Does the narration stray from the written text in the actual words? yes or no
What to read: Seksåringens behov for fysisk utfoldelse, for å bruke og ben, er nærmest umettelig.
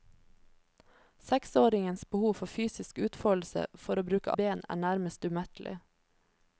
no